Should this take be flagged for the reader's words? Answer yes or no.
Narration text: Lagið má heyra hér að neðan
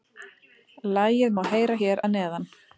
no